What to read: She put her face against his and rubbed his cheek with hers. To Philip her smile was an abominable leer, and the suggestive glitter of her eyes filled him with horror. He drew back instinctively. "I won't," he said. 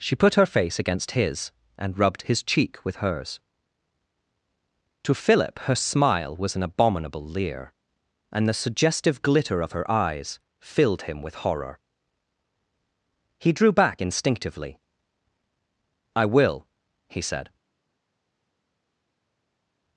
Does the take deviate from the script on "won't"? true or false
true